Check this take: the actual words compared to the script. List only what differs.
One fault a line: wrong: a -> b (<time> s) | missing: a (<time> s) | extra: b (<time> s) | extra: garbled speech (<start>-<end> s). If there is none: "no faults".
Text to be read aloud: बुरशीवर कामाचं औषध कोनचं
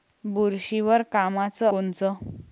missing: औषध (1.7 s)